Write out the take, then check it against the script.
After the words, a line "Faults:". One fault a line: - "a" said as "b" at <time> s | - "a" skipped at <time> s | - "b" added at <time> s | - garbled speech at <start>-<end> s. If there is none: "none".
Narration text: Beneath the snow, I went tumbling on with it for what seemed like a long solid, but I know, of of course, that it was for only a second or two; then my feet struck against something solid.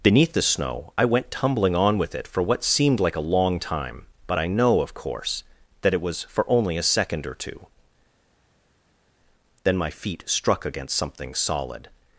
Beneath the snow, I went tumbling on with it for what seemed like a long time, but I know, of course, that it was for only a second or two; then my feet struck against something solid.
Faults:
- "solid" said as "time" at 3.6 s
- "of" skipped at 4.9 s